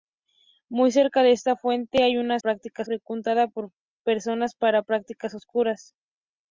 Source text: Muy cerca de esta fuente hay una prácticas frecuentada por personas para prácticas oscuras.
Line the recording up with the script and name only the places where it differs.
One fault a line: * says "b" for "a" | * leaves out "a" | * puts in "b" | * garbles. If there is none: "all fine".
all fine